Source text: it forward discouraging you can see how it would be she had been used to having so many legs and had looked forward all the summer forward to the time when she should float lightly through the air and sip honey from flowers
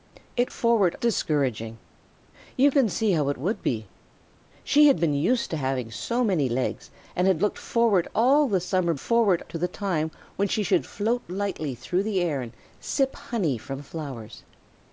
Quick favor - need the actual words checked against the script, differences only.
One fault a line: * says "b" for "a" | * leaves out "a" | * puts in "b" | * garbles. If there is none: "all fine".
all fine